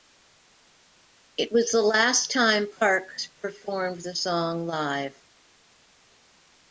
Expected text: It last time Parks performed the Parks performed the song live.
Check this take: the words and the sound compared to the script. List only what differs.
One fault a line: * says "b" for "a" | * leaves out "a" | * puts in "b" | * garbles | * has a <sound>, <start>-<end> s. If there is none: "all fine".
* puts in "was the"
* leaves out "Parks performed the"